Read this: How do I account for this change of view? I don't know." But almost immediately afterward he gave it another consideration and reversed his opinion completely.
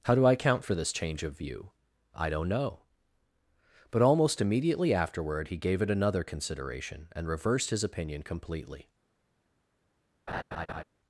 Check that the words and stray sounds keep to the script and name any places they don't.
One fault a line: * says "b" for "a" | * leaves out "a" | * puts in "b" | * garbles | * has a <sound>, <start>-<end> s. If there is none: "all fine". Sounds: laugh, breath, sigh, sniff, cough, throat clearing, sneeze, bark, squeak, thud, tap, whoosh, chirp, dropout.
* has a laugh, 10.3-10.8 s